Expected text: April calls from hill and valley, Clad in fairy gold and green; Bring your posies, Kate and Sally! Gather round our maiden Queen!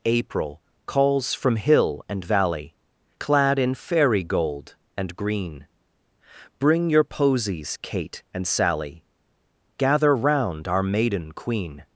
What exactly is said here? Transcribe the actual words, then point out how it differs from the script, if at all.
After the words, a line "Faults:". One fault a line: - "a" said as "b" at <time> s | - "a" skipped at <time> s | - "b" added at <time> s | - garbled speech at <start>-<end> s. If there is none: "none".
April calls from hill and valley, Clad in fairy gold and green; Bring your posies, Kate and Sally! Gather round our maiden Queen!
Faults:
none